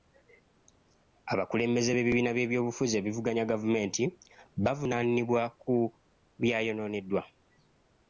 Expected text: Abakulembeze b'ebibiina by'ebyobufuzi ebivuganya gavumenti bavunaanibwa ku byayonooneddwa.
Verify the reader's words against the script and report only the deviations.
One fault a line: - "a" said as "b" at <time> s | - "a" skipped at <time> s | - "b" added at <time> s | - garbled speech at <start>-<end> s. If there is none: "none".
none